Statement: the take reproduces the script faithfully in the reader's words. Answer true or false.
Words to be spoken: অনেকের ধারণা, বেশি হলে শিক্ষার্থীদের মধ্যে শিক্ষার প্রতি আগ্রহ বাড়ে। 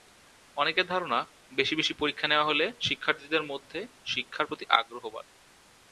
false